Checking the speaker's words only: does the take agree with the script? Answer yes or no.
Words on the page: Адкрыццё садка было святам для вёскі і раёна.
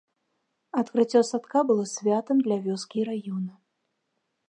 yes